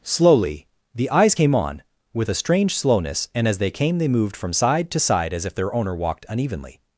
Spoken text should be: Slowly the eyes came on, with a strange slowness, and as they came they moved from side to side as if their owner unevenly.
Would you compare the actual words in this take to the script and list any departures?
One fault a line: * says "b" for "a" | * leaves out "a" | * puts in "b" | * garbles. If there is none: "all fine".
* puts in "walked"